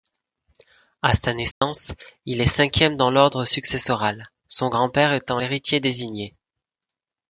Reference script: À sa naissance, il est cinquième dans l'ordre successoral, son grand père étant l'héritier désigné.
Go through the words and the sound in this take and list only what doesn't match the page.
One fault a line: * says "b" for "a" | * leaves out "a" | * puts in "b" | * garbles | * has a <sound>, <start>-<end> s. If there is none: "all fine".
* has a dropout, 1.5-1.6 s